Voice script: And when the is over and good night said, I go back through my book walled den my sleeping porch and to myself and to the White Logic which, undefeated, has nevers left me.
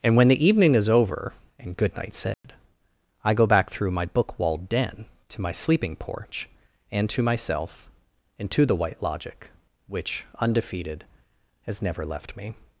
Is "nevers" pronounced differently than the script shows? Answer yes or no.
yes